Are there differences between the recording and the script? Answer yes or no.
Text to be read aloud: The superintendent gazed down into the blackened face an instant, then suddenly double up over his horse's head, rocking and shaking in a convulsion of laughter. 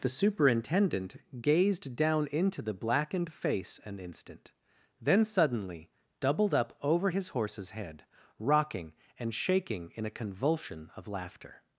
yes